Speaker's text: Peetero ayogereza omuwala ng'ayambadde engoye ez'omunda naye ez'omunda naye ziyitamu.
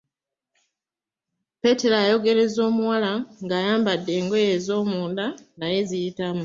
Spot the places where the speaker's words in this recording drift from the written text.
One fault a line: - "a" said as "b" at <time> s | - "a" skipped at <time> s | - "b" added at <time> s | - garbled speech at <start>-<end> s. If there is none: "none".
- "ez'omunda naye" skipped at 5.8 s